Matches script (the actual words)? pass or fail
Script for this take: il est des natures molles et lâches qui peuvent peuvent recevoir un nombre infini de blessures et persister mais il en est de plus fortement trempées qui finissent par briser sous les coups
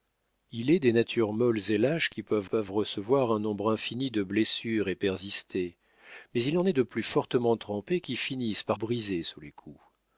pass